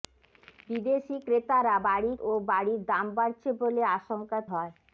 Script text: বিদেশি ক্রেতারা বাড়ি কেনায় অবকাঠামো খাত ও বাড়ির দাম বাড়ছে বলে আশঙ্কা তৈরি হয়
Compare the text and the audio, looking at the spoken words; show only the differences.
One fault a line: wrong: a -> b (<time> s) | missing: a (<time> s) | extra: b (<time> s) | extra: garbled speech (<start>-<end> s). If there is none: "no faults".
missing: কেনায় অবকাঠামো খাত (2.1 s)
missing: তৈরি (4.4 s)